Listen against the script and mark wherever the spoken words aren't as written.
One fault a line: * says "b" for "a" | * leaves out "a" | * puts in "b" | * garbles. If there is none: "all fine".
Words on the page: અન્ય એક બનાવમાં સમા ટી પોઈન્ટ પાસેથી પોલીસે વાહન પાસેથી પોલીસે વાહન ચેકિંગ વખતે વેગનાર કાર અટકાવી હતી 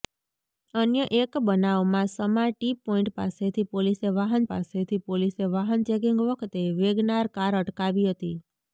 all fine